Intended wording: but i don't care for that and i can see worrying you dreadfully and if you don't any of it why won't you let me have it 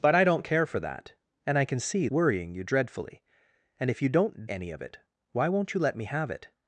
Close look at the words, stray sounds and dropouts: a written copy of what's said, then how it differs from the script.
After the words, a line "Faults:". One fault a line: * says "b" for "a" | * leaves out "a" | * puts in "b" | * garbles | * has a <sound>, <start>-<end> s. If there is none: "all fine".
but i don't care for that and i can see worrying you dreadfully and if you don't any of it why won't you let me have it
Faults:
all fine